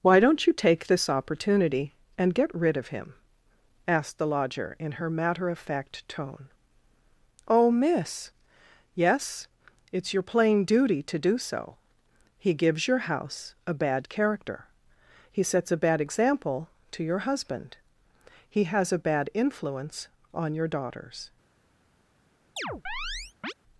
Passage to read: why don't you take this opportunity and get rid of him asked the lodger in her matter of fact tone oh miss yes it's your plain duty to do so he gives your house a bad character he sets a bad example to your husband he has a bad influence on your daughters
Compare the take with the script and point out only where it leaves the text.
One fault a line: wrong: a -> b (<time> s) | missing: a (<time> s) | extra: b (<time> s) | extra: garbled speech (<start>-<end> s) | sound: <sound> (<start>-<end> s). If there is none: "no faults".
sound: chirp (22.6-23.5 s)